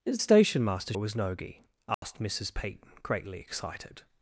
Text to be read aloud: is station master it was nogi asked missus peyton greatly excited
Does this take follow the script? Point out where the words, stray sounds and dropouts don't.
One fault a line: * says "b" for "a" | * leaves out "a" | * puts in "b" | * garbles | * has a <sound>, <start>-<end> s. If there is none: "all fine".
* has a dropout, 1.9-2.0 s